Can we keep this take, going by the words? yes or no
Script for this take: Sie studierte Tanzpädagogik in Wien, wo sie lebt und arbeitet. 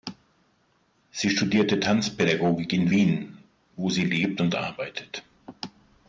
yes